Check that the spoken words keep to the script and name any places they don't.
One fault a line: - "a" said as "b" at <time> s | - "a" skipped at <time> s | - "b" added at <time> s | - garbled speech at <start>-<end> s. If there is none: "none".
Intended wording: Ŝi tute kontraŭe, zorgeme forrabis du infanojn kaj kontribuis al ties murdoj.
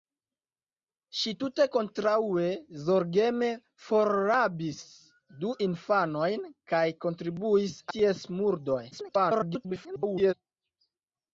- "al" skipped at 7.8 s
- garbled speech at 8.9-10.3 s